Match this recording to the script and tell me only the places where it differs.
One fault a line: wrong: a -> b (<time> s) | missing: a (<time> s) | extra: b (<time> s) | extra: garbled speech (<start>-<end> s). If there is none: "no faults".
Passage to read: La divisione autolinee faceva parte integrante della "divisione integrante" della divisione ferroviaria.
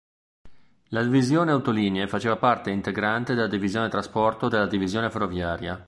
wrong: integrante -> trasporto (3.9 s)